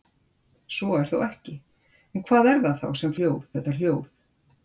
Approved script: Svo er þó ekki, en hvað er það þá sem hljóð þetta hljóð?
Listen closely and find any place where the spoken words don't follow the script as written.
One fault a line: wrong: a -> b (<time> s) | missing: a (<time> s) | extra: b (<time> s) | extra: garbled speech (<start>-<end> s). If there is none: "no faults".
no faults